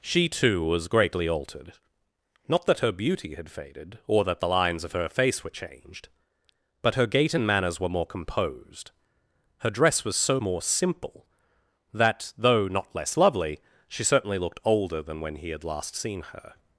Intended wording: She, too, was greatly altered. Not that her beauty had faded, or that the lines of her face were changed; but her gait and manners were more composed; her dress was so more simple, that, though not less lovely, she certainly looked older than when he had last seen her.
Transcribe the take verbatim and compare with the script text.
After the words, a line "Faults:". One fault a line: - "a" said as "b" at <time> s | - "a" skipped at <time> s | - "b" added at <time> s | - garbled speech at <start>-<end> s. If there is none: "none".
She, too, was greatly altered. Not that her beauty had faded, or that the lines of her face were changed; but her gait and manners were more composed; her dress was so more simple, that, though not less lovely, she certainly looked older than when he had last seen her.
Faults:
none